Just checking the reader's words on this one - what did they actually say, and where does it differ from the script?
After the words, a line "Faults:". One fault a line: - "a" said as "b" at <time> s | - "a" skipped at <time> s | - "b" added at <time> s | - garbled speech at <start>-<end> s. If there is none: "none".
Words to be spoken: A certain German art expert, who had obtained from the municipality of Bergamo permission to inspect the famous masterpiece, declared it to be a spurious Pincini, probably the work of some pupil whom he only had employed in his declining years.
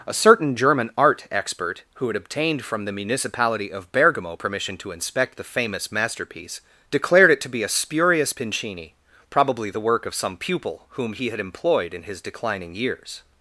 A certain German art expert, who had obtained from the municipality of Bergamo permission to inspect the famous masterpiece, declared it to be a spurious Pincini, probably the work of some pupil whom he had employed in his declining years.
Faults:
- "only" skipped at 11.3 s